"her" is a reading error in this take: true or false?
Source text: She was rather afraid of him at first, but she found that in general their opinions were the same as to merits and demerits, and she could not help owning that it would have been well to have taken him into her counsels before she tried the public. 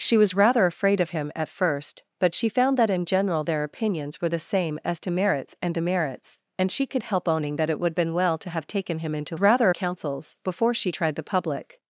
true